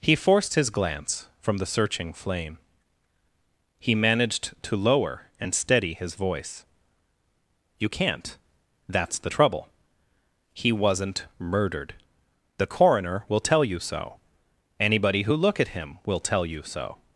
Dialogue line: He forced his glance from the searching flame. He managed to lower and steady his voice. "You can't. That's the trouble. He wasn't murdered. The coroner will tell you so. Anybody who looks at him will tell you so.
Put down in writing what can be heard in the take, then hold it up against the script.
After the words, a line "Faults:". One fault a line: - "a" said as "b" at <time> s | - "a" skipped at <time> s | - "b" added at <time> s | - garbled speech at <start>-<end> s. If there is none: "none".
He forced his glance from the searching flame. He managed to lower and steady his voice. "You can't. That's the trouble. He wasn't murdered. The coroner will tell you so. Anybody who look at him will tell you so.
Faults:
- "looks" said as "look" at 15.3 s